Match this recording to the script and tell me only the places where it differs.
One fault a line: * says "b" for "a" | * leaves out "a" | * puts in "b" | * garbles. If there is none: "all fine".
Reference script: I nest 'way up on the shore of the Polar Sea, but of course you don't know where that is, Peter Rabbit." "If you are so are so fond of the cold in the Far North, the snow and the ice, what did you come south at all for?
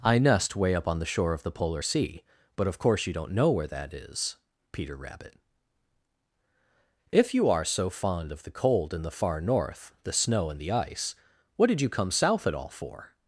* leaves out "are so"